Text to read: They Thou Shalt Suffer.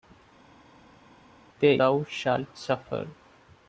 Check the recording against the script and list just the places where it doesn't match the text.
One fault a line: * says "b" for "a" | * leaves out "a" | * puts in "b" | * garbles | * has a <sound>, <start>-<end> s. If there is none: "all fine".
all fine